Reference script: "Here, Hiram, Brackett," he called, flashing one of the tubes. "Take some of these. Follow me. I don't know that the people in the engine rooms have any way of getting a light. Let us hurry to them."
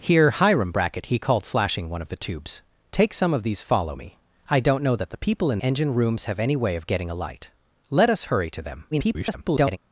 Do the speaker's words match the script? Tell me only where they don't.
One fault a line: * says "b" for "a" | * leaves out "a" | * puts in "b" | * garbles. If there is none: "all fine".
* leaves out "the"
* garbles